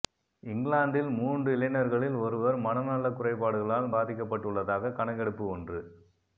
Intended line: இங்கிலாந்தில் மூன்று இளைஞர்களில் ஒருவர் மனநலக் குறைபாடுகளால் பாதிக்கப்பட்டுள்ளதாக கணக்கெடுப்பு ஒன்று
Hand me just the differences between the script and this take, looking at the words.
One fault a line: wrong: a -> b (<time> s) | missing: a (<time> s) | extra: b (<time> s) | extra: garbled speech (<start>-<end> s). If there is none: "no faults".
no faults